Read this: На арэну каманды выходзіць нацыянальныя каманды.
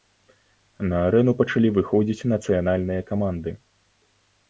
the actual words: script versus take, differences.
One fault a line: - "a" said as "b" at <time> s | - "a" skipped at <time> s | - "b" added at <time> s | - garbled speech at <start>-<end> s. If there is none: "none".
- "каманды" said as "пачалі" at 1.4 s